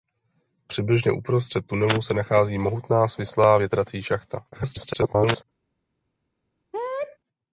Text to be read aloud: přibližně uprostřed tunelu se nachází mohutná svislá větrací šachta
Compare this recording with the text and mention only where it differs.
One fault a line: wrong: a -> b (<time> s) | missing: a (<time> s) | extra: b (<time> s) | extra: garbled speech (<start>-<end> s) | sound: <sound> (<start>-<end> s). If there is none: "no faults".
extra: garbled speech (4.5-5.4 s)
sound: sneeze (6.7-7.2 s)